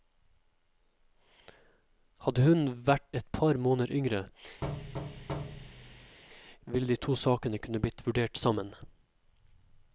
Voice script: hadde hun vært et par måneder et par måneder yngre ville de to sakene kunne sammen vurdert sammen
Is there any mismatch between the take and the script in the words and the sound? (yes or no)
yes